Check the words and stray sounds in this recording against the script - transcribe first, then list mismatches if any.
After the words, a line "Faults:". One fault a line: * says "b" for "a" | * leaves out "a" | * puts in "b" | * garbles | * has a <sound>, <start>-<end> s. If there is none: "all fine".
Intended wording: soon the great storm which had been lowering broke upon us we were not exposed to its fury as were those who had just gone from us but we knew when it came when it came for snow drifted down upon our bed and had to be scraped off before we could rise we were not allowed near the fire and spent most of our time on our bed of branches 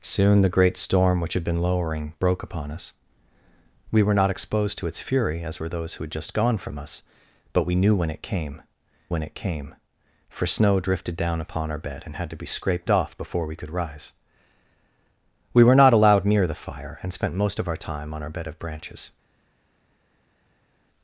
soon the great storm which had been lowering broke upon us we were not exposed to its fury as were those who had just gone from us but we knew when it came when it came for snow drifted down upon our bed and had to be scraped off before we could rise we were not allowed near the fire and spent most of our time on our bed of branches
Faults:
all fine